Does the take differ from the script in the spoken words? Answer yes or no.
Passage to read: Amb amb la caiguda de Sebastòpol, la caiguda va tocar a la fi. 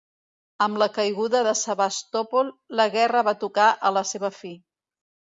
yes